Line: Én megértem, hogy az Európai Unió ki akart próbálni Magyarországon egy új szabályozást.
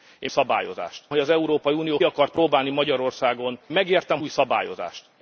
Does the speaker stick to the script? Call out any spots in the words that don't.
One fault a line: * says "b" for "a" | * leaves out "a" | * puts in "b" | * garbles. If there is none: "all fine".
* says "szabályozást" for "megértem"
* leaves out "ki"
* says "megértem" for "egy"